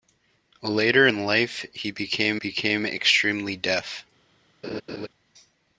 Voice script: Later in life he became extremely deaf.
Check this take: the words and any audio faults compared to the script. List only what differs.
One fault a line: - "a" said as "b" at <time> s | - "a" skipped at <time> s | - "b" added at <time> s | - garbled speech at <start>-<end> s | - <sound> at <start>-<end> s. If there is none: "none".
- "became" added at 2.3 s
- laugh at 4.6-5.1 s